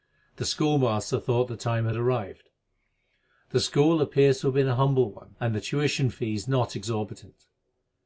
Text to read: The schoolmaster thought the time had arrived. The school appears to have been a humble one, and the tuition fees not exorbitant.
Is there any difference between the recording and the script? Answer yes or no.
no